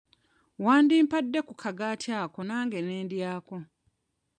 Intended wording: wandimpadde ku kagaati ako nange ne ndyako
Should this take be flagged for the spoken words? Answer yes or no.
no